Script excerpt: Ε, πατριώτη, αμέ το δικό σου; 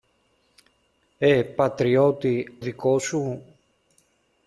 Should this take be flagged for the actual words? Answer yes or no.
yes